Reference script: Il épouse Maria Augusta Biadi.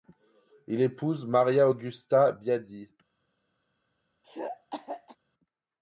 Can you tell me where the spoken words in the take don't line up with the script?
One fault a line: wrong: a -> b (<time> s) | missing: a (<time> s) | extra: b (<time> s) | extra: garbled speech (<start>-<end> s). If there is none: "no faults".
no faults